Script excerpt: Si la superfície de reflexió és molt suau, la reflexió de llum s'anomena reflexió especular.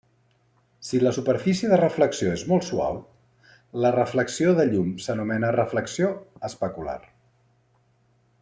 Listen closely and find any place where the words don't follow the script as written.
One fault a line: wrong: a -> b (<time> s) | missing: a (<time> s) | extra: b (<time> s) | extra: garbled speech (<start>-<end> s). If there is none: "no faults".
no faults